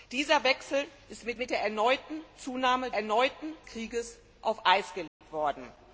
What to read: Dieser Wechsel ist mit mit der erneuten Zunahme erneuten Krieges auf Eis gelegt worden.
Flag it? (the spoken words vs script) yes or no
no